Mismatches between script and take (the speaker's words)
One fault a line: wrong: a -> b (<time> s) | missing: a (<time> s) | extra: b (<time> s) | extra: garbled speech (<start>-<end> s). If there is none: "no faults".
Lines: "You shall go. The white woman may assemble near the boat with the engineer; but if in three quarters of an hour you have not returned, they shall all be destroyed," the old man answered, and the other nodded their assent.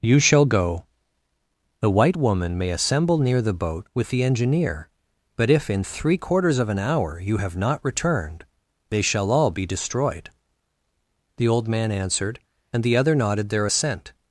no faults